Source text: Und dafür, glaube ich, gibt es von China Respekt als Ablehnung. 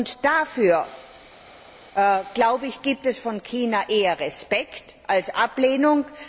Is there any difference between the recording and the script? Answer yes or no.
yes